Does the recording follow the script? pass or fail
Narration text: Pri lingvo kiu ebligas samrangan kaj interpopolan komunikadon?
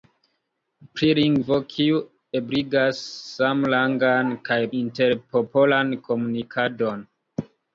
pass